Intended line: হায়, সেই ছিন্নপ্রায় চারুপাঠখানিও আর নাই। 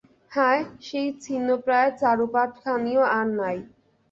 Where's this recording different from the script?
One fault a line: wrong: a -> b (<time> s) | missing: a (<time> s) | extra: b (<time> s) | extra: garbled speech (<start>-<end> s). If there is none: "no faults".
no faults